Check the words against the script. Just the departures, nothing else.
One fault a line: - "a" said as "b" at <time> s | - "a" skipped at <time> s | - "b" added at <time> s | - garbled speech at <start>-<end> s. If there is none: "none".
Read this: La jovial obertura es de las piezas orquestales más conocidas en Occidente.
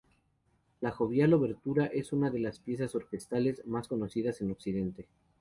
- "una" added at 2.1 s